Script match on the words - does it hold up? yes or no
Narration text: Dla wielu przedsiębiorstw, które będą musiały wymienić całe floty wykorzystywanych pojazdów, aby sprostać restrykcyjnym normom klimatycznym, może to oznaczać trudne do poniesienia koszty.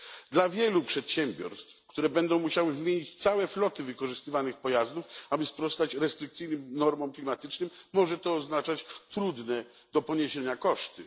yes